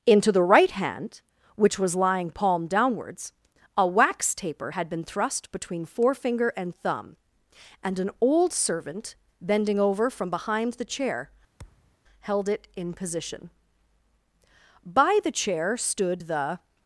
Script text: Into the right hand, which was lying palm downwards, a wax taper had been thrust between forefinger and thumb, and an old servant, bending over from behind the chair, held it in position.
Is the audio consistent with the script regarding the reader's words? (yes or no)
no